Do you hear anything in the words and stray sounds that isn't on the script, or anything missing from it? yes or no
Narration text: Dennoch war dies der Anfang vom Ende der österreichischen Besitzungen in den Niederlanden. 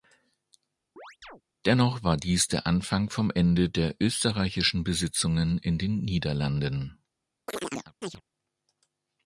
yes